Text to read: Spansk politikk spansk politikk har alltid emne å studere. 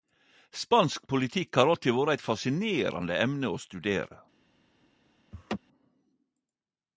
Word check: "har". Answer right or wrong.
wrong